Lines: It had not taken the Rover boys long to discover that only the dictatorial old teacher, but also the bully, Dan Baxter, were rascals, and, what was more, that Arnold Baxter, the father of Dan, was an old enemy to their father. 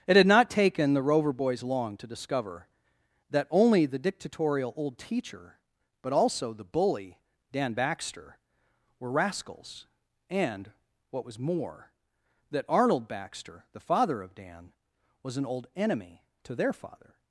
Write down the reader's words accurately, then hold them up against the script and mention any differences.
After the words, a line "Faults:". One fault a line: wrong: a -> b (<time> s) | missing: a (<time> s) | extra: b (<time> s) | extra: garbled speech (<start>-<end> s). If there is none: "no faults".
It had not taken the Rover boys long to discover that only the dictatorial old teacher, but also the bully, Dan Baxter, were rascals, and, what was more, that Arnold Baxter, the father of Dan, was an old enemy to their father.
Faults:
no faults